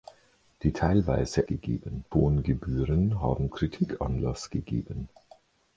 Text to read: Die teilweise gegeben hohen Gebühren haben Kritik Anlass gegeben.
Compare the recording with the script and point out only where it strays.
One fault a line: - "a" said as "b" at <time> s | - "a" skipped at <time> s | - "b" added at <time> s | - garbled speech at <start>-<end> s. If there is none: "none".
none